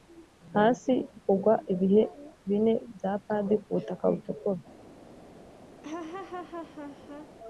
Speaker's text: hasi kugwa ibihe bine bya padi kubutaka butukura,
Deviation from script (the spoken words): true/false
false